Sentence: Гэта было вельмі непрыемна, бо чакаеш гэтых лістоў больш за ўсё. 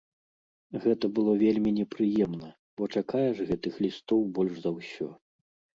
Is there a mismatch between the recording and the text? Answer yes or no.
no